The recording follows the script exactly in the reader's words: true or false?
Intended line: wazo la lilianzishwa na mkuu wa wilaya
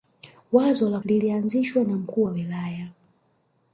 true